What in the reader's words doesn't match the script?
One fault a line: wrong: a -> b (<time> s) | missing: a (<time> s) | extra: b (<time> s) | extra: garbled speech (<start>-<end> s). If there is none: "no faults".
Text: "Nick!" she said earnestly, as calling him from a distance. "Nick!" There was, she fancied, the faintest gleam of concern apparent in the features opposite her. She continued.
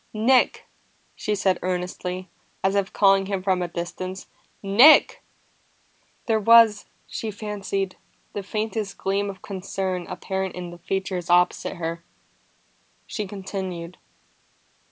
extra: if (2.7 s)